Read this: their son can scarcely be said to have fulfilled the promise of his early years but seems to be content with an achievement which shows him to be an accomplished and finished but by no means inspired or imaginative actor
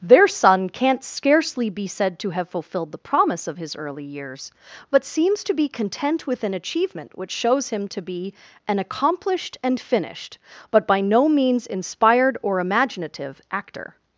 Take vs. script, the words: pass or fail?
fail